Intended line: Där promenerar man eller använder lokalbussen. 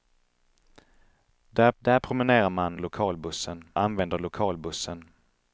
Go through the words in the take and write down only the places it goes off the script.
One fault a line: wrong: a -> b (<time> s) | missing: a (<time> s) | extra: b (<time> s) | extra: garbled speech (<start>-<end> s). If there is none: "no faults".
extra: där (1.8 s)
wrong: eller -> lokalbussen (2.8 s)